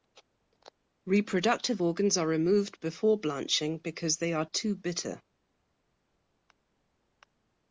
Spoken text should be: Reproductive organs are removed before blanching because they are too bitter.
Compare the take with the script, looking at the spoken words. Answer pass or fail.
pass